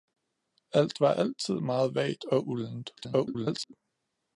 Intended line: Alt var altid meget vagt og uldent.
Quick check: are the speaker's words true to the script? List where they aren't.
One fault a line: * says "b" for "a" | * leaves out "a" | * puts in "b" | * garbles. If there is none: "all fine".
* garbles